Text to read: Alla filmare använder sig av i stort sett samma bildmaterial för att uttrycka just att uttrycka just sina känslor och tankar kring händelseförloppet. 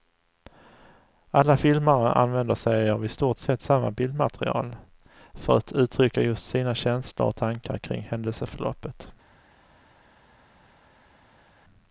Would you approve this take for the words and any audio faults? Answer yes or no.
no